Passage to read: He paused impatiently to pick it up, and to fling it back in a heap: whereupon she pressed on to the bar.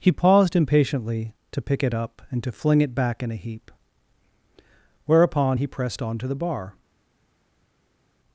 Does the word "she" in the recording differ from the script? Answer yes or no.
yes